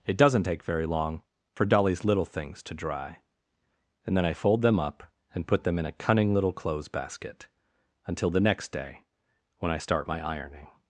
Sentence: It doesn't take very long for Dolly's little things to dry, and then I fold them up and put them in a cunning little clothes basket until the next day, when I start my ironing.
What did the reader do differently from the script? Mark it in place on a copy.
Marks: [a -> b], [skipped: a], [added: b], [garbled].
It doesn't take very long for Dolly's little things to dry, and then I fold them up and put them in a cunning little clothes basket until the next day, when I start my ironing.